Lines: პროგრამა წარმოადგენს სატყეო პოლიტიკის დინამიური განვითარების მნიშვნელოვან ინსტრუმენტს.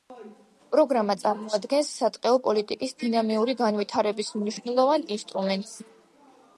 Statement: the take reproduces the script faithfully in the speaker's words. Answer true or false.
true